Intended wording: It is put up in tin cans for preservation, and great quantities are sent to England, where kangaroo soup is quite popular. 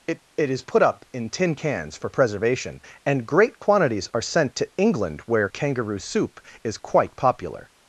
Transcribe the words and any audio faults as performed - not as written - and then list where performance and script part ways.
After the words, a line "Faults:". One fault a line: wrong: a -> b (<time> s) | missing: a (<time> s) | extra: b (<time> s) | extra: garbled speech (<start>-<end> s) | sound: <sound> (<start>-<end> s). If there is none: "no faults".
It it is put up in tin cans for preservation, and great quantities are sent to England, where kangaroo soup is quite popular.
Faults:
extra: it (0.3 s)